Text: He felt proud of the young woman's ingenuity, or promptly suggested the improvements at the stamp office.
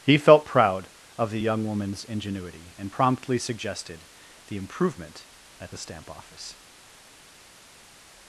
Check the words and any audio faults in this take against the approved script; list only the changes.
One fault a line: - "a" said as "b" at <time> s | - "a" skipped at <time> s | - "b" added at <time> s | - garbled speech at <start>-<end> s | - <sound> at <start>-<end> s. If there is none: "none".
- "or" said as "and" at 2.8 s
- "improvements" said as "improvement" at 4.6 s